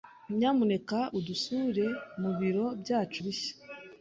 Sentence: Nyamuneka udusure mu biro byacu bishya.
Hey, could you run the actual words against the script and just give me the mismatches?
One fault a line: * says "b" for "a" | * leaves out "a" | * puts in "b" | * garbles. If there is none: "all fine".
all fine